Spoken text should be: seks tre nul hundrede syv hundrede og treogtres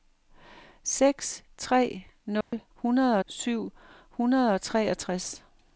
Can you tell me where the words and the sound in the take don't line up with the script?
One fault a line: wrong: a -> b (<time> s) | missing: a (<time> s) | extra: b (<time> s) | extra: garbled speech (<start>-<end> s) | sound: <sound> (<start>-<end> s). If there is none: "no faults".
sound: dropout (2.4-2.5 s)